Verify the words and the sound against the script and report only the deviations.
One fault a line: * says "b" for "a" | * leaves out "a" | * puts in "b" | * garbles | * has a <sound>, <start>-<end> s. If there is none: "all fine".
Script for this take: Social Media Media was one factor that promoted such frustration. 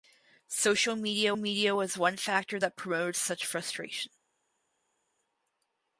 all fine